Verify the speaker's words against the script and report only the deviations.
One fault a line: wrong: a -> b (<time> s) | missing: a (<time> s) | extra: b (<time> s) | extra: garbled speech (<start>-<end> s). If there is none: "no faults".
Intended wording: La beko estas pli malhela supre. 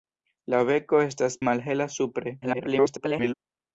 missing: pli (1.4 s)
extra: garbled speech (2.4-3.3 s)